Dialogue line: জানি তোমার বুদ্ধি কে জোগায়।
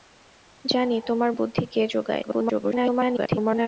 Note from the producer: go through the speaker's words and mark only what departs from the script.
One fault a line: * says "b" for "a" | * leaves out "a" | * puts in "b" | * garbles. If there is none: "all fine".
* garbles